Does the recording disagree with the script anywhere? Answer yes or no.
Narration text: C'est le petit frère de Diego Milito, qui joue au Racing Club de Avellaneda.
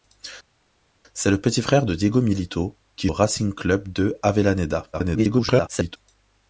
yes